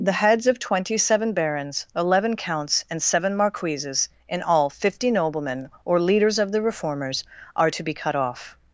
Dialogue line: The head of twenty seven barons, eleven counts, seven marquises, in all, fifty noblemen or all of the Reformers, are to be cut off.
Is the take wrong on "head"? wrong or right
wrong